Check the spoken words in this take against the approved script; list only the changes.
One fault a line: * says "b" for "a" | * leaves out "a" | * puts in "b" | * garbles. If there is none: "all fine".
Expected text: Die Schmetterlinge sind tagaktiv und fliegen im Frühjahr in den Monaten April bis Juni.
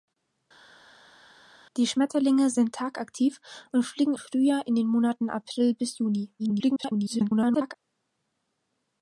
* leaves out "im"
* garbles